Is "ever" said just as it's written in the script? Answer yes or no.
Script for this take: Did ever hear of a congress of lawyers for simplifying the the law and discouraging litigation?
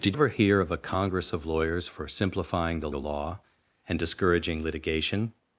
yes